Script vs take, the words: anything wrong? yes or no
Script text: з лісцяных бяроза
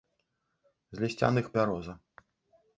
no